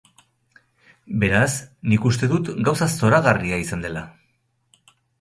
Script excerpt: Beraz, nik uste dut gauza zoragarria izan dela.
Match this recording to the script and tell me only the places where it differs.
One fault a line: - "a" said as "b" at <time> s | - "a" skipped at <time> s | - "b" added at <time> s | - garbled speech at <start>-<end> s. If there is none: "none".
none